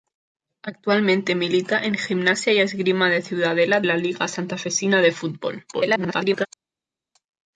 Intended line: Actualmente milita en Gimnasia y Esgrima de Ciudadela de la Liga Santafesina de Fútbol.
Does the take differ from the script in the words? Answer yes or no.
yes